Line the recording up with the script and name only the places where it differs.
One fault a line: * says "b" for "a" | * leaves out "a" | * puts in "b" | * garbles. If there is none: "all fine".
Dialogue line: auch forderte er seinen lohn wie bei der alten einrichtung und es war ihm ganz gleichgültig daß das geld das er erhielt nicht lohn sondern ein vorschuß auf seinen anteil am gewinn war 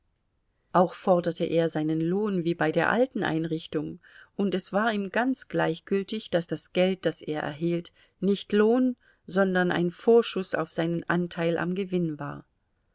all fine